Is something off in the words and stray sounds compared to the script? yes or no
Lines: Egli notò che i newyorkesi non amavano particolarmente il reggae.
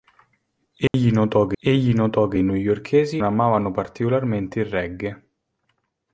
yes